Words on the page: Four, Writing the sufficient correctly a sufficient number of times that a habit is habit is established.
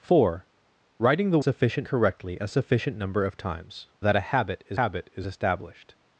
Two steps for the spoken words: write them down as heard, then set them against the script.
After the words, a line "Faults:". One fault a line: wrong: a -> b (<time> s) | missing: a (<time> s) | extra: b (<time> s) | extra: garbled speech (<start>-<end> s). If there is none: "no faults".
Four, Writing the sufficient correctly a sufficient number of times that a habit is habit is established.
Faults:
no faults